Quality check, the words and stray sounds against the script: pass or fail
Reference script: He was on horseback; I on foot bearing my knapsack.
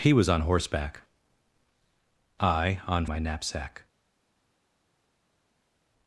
fail